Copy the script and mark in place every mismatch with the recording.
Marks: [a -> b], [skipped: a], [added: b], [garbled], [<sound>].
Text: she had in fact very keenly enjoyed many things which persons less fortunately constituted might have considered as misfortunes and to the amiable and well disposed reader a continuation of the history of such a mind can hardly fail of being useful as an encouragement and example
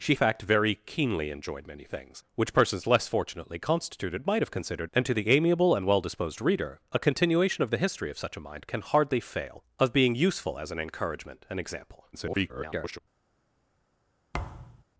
she [skipped: had in] fact very keenly enjoyed many things which persons less fortunately constituted might have considered [skipped: as misfortunes] and to the amiable and well disposed reader a continuation of the history of such a mind can hardly fail of being useful as an encouragement and example [garbled] [thud]